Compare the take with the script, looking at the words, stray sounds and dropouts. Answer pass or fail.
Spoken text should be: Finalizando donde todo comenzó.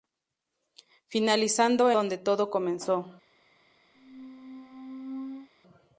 fail